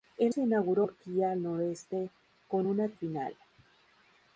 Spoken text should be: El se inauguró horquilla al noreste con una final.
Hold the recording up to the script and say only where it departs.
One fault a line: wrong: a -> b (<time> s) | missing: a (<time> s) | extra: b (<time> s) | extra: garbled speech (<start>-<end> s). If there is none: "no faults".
no faults